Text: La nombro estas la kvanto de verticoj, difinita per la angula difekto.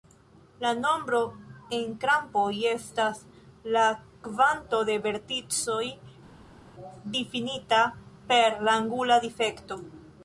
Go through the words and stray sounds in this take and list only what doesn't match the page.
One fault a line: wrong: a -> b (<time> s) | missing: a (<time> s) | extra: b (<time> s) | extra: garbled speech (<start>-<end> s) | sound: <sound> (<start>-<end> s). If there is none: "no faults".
extra: en krampoj (1.8 s)